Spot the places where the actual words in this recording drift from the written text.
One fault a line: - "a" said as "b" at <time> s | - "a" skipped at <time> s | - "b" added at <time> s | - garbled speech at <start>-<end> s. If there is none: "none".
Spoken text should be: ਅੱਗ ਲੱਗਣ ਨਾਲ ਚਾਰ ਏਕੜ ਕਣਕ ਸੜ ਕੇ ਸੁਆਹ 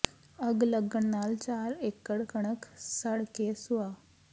none